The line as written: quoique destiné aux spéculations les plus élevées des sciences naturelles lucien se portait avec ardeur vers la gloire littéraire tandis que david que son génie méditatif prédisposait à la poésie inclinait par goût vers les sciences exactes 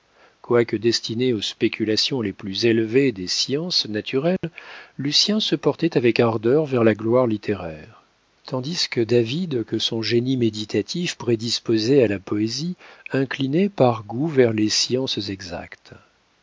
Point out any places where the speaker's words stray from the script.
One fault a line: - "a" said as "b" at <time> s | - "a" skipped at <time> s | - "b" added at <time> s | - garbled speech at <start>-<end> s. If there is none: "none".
none